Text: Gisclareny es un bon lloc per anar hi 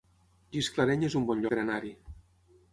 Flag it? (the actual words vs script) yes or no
yes